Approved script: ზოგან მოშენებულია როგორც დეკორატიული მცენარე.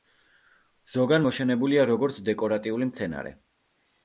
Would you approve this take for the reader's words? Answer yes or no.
yes